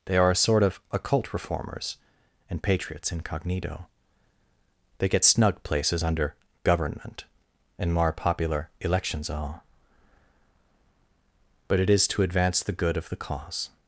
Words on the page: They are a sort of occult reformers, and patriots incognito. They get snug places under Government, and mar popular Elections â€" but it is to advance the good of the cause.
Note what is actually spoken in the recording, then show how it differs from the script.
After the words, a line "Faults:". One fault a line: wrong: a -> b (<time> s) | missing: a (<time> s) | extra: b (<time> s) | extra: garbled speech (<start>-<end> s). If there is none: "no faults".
They are a sort of occult reformers, and patriots incognito. They get snug places under Government, and more popular Elections all€" but it is to advance the good of the cause.
Faults:
wrong: mar -> more (7.9 s)
wrong: â -> all (9.3 s)